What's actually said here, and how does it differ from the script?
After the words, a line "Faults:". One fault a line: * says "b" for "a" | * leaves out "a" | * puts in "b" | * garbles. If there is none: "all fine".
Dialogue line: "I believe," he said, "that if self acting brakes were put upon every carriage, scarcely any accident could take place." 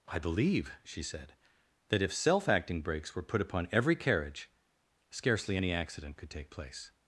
"I believe," she said, "that if self acting brakes were put upon every carriage, scarcely any accident could take place."
Faults:
* says "she" for "he"